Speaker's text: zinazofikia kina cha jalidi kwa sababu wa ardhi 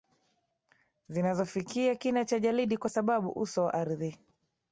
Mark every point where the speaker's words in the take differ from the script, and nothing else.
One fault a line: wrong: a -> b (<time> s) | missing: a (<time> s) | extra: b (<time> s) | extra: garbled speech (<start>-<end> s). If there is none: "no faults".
extra: uso (3.3 s)